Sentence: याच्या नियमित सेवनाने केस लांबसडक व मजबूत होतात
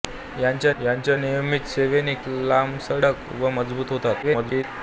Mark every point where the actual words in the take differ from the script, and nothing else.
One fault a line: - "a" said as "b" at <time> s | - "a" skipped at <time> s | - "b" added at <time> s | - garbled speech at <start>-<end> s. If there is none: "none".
- "याच्या" added at 0.8 s
- "केस" skipped at 2.1 s
- garbled speech at 4.2-4.6 s